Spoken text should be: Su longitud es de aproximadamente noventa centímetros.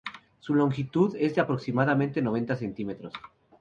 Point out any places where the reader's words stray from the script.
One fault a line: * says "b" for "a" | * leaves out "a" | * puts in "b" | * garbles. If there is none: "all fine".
all fine